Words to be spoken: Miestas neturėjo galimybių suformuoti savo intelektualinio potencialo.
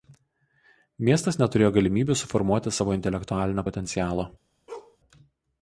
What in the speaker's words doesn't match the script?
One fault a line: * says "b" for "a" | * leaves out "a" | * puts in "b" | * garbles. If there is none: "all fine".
all fine